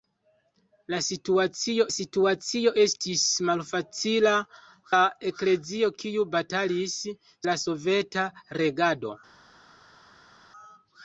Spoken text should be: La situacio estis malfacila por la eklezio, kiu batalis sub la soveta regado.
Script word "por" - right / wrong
wrong